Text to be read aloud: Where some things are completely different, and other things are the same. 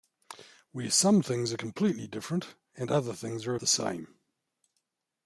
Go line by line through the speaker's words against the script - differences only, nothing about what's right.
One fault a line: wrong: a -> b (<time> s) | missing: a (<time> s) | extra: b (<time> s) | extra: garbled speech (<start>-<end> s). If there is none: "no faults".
no faults